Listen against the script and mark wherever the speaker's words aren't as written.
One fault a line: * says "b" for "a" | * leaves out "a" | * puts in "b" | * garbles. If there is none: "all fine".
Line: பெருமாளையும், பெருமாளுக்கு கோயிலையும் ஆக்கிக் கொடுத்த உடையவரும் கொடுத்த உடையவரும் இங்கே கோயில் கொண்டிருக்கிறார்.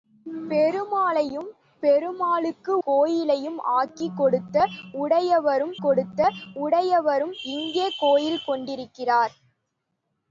all fine